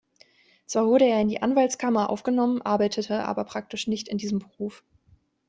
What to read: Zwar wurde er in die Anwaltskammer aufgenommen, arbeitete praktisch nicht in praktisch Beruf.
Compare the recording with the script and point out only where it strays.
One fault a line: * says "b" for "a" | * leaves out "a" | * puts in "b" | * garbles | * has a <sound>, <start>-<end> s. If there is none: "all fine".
* puts in "aber"
* says "diesem" for "praktisch"